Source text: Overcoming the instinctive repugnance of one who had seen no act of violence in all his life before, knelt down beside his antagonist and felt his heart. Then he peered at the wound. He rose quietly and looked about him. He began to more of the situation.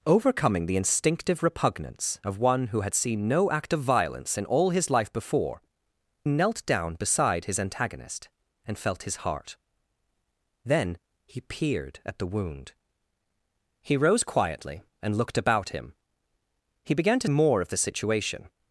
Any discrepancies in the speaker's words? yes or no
no